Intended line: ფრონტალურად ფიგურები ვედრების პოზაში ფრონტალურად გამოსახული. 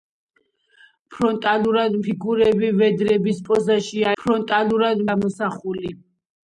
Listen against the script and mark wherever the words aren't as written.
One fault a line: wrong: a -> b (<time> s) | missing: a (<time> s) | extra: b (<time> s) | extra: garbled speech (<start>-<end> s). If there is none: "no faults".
no faults